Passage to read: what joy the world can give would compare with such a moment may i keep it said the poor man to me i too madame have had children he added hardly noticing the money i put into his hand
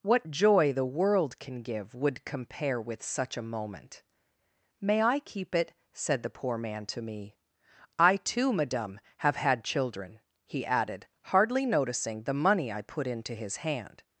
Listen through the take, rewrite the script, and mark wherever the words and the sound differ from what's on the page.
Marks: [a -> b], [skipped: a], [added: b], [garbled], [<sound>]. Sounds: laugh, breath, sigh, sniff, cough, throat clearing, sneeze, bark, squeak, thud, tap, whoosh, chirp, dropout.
what joy the world can give would compare with such a moment may i keep it said the poor man to me i too madame have had children he added hardly noticing the money i put into his hand